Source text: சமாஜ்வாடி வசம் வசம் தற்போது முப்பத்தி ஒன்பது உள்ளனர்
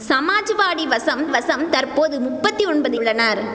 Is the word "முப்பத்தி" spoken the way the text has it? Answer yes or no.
yes